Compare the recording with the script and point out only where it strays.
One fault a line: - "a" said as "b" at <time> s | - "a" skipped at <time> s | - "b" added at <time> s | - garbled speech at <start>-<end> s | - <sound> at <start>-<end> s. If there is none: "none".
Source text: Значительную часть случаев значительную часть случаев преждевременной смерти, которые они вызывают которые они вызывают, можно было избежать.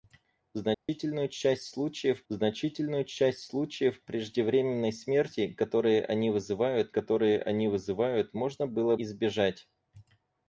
- dropout at 0.7-0.9 s